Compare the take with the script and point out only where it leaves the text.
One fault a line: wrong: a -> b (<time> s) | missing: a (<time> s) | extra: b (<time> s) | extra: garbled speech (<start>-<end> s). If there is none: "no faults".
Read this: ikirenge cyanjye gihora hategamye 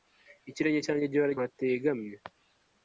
no faults